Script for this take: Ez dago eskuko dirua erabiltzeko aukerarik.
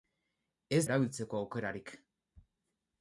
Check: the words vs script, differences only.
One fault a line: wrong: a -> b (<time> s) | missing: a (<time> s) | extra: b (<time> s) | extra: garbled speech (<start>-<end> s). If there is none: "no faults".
missing: dago eskuko dirua (0.8 s)